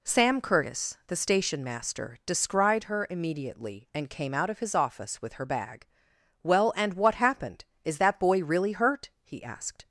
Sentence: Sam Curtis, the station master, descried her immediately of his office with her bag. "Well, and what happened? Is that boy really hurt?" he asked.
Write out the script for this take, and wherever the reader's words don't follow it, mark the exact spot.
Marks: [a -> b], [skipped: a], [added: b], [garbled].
Sam Curtis, the station master, descried her immediately [added: and came out] of his office with her bag. "Well, and what happened? Is that boy really hurt?" he asked.